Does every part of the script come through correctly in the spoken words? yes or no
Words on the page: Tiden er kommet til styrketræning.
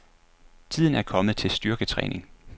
yes